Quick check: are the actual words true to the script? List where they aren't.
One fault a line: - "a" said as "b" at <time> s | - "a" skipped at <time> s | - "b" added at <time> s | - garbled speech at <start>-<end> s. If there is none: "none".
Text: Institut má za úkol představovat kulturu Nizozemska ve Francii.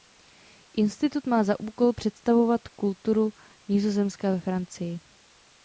none